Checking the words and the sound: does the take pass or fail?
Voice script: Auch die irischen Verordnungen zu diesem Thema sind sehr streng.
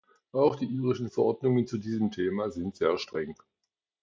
pass